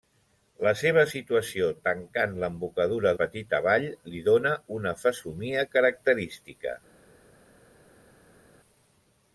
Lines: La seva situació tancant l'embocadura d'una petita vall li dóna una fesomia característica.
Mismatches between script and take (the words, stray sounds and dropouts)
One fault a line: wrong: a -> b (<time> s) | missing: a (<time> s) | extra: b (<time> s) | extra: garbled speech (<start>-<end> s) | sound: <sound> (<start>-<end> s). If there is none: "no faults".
missing: d'una (3.1 s)